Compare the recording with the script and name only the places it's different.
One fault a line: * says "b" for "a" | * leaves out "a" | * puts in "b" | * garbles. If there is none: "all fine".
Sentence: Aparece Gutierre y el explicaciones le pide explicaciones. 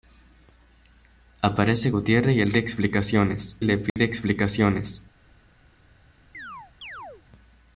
all fine